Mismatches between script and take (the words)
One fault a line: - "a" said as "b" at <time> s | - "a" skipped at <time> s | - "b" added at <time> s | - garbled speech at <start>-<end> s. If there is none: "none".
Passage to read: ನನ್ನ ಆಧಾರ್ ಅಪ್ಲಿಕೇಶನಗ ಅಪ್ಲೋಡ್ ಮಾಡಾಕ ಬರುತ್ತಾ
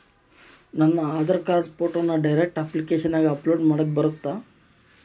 - "ಕಾರ್ಡ್ ಫೋಟೋನ ಡೈರೆಕ್ಟ್" added at 1.4 s